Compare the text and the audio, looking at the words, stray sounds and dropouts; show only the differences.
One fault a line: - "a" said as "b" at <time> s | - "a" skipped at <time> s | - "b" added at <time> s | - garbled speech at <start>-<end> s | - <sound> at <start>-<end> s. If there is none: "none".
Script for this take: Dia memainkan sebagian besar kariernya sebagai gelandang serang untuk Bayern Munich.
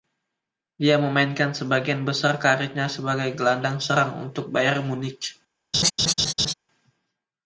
- laugh at 5.7-6.5 s